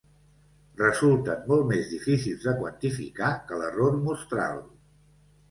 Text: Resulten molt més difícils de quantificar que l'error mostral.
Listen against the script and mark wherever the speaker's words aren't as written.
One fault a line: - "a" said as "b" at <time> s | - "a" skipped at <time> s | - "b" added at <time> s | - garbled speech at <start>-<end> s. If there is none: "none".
none